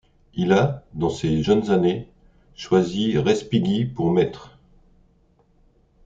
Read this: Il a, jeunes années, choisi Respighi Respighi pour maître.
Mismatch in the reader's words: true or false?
true